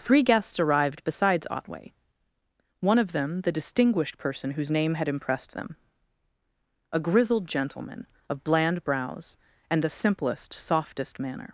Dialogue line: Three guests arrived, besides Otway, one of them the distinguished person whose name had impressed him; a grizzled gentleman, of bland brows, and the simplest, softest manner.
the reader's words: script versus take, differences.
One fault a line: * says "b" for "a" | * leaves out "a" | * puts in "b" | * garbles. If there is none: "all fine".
* says "them" for "him"